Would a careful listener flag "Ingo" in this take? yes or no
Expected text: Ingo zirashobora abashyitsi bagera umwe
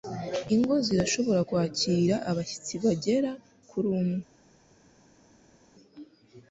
no